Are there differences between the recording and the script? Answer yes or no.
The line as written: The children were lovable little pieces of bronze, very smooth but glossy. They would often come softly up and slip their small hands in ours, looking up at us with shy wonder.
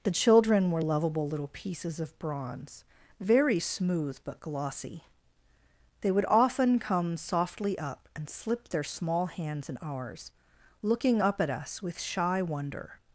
no